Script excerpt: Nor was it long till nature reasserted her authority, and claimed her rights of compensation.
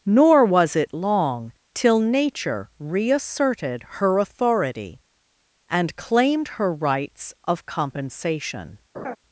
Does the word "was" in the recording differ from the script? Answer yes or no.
no